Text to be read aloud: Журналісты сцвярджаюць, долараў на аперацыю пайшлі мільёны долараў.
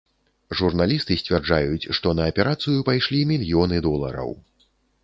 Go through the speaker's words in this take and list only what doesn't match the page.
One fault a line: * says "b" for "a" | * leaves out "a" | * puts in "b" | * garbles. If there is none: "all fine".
* says "што" for "долараў"